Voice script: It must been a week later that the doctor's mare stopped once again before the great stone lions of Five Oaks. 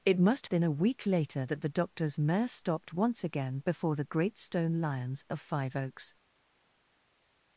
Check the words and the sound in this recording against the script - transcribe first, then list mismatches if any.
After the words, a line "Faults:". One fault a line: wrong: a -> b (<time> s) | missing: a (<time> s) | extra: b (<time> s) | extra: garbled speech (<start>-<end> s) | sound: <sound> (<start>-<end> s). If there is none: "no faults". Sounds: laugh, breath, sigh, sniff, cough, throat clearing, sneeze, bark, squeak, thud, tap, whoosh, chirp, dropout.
It must been a week later that the doctor's mare stopped once again before the great stone lions of Five Oaks.
Faults:
no faults